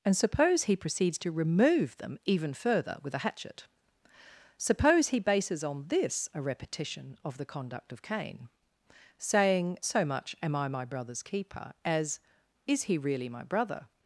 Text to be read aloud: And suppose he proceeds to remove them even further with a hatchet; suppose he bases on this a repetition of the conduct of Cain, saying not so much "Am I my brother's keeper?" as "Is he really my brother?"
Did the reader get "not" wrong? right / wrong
wrong